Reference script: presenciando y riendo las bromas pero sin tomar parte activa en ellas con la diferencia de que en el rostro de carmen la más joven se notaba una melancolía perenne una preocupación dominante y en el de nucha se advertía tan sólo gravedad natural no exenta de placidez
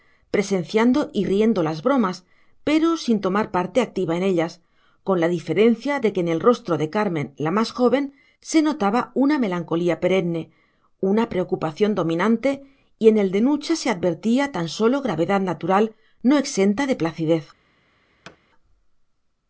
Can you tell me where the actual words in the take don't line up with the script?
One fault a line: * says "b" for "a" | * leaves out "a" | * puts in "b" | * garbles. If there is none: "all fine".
all fine